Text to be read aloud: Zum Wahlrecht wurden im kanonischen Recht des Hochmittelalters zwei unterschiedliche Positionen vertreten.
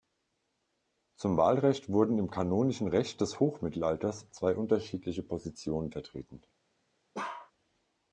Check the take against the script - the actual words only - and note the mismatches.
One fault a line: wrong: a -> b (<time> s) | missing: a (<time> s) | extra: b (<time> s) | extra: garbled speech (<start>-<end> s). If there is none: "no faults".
no faults